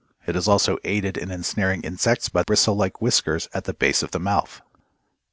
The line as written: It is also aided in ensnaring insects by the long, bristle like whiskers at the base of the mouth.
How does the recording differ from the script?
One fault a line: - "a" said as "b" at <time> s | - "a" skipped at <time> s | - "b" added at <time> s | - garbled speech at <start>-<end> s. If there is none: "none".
- "the long" skipped at 2.4 s